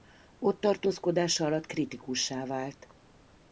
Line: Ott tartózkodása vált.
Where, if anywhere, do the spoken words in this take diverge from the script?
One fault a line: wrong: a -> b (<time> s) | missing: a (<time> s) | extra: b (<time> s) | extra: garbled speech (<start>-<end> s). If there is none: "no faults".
extra: alatt kritikussá (1.4 s)